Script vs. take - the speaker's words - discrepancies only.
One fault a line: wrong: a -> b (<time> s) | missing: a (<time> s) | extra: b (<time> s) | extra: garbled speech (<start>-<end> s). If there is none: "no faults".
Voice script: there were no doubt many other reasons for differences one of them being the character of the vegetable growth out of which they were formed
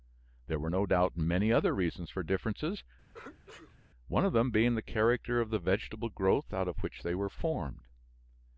no faults